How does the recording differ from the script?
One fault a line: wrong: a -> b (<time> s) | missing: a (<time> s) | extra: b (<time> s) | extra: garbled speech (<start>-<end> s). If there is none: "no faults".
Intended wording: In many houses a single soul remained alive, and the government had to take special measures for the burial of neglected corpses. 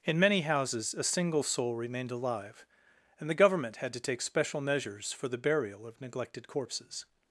no faults